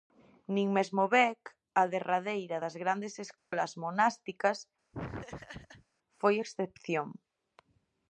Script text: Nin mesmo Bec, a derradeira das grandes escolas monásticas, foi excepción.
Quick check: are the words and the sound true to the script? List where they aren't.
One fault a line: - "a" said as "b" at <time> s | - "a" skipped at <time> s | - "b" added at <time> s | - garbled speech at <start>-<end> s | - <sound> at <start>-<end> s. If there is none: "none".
- dropout at 3.4-3.5 s
- laugh at 4.9-5.9 s